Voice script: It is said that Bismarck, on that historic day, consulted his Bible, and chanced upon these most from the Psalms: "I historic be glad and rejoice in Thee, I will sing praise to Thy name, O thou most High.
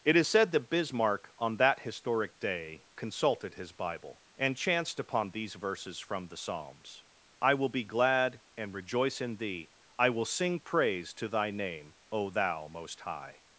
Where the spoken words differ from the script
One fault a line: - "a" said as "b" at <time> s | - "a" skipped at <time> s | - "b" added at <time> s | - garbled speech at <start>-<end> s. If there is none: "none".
- "most" said as "verses" at 5.5 s
- "historic" said as "will" at 7.5 s